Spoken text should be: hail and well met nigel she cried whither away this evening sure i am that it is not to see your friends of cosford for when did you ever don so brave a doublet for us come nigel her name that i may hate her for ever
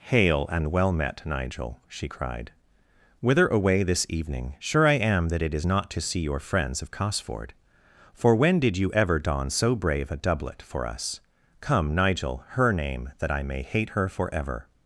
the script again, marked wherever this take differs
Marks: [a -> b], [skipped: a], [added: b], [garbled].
hail and well met nigel she cried whither away this evening sure i am that it is not to see your friends of cosford for when did you ever don so brave a doublet for us come nigel her name that i may hate her for ever